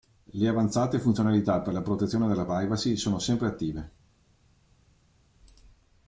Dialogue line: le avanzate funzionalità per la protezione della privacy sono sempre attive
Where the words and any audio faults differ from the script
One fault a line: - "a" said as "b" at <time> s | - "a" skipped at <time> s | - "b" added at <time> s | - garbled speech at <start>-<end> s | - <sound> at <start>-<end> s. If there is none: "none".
none